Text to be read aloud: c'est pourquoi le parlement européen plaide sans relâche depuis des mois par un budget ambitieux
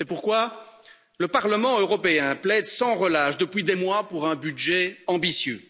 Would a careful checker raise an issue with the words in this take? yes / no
yes